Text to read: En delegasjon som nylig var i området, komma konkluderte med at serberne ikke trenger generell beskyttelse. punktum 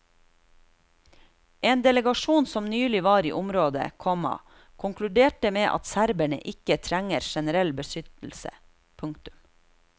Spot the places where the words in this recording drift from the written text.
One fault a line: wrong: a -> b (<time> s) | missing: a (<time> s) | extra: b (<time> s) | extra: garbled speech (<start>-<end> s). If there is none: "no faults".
no faults